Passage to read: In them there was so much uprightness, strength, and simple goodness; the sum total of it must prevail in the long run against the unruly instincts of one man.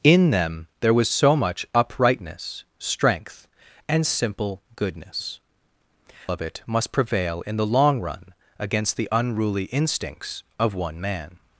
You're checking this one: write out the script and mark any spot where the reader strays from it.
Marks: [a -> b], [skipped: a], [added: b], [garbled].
In them there was so much uprightness, strength, and simple goodness; [skipped: the sum total] of it must prevail in the long run against the unruly instincts of one man.